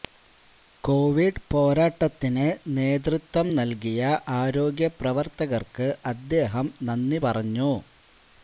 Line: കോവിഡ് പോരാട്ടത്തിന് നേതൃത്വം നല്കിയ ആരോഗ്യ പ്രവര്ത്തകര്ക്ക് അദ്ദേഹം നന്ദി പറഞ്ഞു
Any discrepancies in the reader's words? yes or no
no